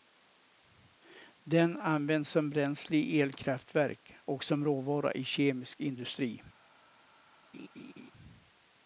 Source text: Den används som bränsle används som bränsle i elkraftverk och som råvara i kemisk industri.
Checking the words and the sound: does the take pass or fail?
fail